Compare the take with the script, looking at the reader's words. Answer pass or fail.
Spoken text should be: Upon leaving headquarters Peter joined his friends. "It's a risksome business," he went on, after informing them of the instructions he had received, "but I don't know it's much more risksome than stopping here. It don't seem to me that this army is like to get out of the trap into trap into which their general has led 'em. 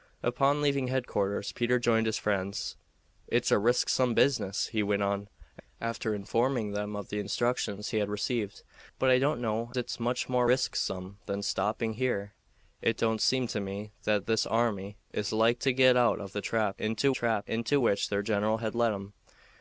pass